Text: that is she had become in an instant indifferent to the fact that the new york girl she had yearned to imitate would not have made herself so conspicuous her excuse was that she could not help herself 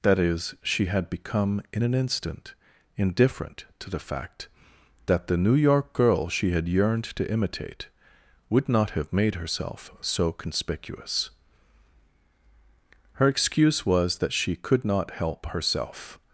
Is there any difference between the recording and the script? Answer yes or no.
no